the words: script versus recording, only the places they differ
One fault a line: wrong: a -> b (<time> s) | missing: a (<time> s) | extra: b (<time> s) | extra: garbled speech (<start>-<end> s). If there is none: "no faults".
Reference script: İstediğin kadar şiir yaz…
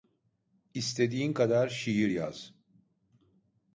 no faults